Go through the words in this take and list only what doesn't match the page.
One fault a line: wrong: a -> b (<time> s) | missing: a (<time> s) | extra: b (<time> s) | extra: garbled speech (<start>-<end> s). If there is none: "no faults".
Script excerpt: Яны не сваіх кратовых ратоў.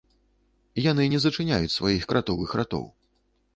extra: зачыняюць (1.2 s)